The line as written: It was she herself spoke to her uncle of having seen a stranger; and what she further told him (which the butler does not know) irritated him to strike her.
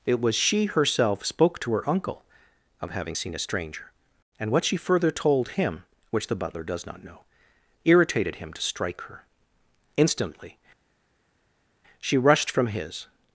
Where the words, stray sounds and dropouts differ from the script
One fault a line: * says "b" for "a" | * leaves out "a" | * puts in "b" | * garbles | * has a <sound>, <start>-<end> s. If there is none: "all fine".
* puts in "Instantly she rushed from his"